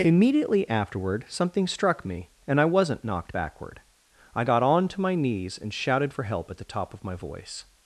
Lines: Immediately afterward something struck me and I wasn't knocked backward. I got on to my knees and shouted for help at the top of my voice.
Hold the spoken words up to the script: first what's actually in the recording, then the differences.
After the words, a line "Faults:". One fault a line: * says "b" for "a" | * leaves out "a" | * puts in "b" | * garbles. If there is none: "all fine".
Immediately afterward something struck me and I wasn't knocked backward. I got on to my knees and shouted for help at the top of my voice.
Faults:
all fine